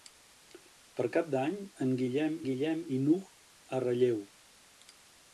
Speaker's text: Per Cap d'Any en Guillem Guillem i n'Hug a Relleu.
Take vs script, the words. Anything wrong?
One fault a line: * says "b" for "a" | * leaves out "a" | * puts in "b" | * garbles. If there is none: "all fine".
all fine